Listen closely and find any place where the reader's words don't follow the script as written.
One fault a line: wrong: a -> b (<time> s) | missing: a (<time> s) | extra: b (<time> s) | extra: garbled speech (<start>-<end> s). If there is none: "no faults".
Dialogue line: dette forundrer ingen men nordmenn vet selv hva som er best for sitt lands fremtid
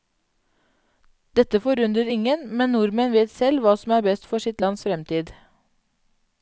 no faults